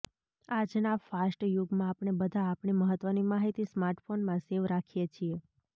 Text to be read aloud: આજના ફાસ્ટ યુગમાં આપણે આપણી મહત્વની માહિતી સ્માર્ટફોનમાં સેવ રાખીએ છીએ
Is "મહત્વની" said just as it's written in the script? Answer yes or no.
yes